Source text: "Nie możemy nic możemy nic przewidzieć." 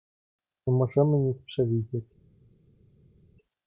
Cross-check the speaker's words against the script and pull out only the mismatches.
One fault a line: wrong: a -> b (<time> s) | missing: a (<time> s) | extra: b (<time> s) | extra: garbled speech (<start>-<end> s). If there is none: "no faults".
missing: możemy nic (1.4 s)